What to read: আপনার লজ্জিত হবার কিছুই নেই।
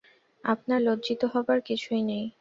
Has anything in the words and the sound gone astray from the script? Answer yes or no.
no